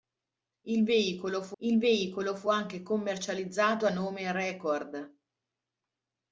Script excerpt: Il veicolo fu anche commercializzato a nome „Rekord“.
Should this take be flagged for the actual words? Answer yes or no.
yes